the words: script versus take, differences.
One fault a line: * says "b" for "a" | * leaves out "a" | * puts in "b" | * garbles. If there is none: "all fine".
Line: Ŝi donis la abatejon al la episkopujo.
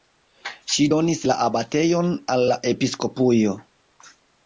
all fine